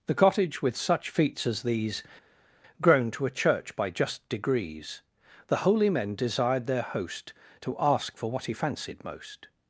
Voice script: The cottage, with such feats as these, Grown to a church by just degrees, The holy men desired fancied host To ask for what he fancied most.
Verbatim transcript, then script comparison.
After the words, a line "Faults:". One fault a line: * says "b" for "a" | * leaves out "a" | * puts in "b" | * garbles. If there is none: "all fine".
The cottage, with such feats as these, Grown to a church by just degrees, The holy men desired their host To ask for what he fancied most.
Faults:
* says "their" for "fancied"